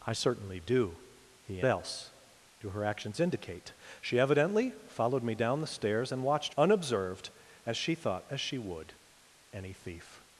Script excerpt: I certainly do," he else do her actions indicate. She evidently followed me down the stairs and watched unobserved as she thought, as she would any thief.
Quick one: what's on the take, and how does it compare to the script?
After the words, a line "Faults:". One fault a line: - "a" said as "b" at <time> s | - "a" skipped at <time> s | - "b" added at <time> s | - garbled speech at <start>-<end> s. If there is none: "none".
I certainly do," he else do her actions indicate. She evidently followed me down the stairs and watched unobserved as she thought, as she would any thief.
Faults:
none